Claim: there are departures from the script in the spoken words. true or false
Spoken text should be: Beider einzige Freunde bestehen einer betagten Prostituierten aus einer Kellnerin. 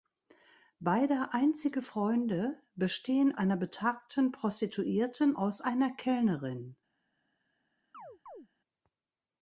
false